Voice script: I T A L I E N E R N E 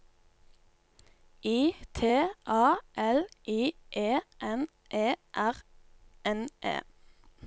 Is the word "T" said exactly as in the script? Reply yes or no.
yes